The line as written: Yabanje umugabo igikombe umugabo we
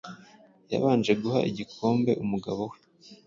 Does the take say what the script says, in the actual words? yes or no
no